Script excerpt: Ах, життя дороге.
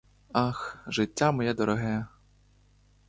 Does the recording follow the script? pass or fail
fail